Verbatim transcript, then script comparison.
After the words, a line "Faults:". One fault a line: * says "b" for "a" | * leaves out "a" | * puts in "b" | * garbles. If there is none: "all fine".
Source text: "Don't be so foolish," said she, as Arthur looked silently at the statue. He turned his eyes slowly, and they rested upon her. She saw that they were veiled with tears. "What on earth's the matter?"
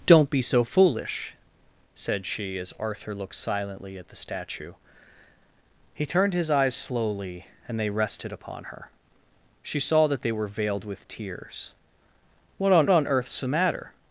"Don't be so foolish," said she, as Arthur looked silently at the statue. He turned his eyes slowly, and they rested upon her. She saw that they were veiled with tears. "What on on earth's the matter?"
Faults:
* puts in "on"